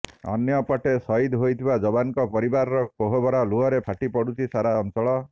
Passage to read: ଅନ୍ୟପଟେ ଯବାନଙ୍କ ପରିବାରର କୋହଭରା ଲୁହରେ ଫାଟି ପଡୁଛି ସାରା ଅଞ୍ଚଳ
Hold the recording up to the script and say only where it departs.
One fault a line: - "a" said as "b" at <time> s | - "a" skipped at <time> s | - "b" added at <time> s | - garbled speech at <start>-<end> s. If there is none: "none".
- "ସହିଦ ହୋଇଥିବା" added at 1.0 s